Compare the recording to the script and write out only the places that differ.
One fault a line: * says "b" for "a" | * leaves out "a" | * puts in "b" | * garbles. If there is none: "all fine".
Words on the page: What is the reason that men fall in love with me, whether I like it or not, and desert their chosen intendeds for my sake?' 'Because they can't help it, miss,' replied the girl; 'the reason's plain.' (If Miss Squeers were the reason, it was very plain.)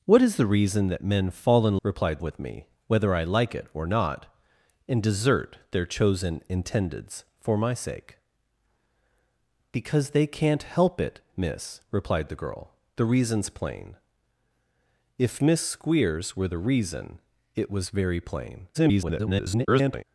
* says "replied" for "love"
* garbles